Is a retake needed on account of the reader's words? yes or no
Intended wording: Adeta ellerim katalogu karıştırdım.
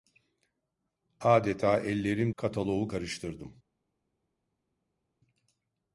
no